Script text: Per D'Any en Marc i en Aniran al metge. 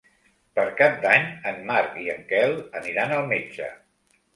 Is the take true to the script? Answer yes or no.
no